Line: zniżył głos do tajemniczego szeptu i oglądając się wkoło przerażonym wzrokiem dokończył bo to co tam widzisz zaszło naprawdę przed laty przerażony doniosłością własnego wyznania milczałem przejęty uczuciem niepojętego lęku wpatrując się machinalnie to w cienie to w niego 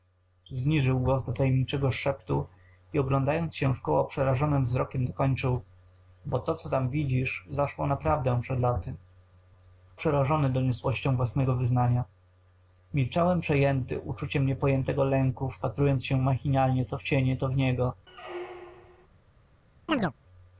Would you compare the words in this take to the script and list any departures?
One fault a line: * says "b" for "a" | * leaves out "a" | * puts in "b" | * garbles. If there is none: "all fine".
all fine